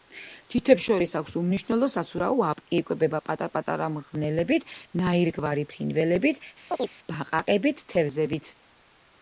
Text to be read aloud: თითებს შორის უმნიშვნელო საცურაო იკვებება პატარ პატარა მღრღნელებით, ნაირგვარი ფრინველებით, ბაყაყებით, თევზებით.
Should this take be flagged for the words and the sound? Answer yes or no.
yes